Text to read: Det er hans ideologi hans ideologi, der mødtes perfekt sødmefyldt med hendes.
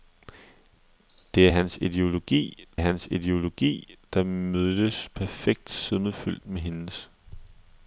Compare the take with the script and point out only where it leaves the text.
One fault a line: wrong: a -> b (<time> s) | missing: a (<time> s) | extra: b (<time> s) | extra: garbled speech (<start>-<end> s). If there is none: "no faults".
no faults